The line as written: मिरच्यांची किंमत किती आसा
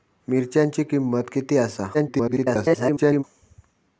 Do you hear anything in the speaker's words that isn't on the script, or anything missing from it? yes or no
yes